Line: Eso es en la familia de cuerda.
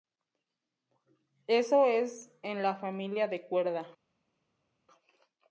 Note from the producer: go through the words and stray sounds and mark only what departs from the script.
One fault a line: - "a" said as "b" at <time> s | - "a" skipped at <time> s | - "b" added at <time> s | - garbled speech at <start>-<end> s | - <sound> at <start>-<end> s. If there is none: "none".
none